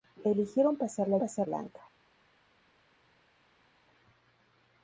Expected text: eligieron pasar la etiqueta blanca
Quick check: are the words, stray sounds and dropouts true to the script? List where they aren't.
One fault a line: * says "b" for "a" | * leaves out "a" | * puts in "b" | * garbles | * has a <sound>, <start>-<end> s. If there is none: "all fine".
* says "pasar" for "etiqueta"